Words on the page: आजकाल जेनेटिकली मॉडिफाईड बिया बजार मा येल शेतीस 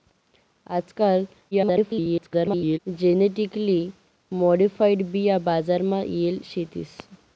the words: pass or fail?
fail